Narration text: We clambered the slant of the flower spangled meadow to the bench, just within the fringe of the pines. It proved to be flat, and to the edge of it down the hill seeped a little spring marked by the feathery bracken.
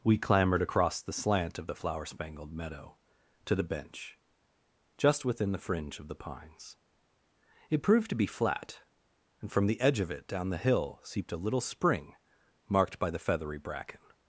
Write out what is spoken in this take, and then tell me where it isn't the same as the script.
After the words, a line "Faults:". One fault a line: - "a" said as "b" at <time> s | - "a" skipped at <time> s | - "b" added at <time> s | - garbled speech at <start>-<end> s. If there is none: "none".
We clambered across the slant of the flower spangled meadow to the bench, just within the fringe of the pines. It proved to be flat, and from the edge of it down the hill seeped a little spring marked by the feathery bracken.
Faults:
- "across" added at 0.6 s
- "to" said as "from" at 9.5 s